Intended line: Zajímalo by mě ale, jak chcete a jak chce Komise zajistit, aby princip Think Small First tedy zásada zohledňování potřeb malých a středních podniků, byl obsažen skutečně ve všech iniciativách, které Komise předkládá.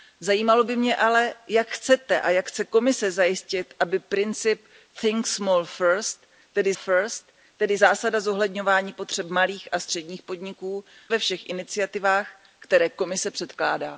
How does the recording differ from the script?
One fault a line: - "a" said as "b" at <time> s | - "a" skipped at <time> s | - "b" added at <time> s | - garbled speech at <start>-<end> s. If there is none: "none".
- "First tedy" added at 6.7 s
- "byl obsažen skutečně" skipped at 10.8 s